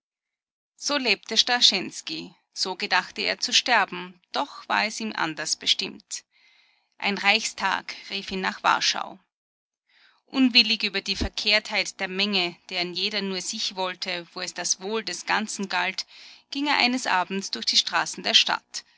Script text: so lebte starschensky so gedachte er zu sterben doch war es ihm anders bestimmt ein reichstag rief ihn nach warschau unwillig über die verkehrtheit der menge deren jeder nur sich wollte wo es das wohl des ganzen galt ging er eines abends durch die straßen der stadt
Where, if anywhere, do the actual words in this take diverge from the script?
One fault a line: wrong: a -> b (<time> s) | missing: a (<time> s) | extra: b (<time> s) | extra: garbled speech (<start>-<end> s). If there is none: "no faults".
no faults